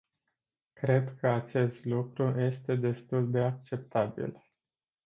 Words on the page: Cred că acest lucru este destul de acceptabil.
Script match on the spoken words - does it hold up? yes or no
yes